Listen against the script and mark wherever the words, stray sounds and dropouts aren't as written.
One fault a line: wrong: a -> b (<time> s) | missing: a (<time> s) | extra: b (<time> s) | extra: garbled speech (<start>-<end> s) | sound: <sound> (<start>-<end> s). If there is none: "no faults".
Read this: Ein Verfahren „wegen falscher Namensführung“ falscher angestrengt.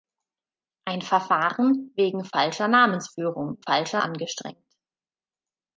no faults